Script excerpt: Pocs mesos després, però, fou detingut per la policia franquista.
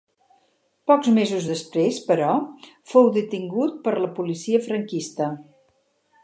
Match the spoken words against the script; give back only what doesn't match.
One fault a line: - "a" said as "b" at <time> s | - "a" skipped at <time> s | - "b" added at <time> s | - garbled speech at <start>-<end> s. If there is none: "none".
none